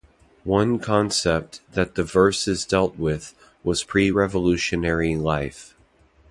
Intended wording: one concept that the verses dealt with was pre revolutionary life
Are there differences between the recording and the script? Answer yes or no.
no